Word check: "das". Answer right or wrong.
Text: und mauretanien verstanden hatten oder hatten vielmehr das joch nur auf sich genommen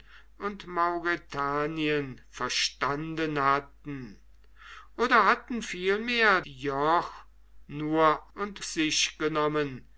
wrong